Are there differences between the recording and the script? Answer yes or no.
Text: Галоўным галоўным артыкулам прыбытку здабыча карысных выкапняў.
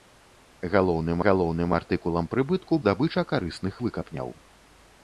no